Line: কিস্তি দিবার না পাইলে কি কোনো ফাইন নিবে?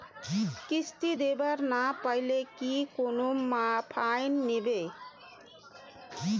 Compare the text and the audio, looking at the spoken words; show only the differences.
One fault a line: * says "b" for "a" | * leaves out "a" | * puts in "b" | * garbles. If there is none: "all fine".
all fine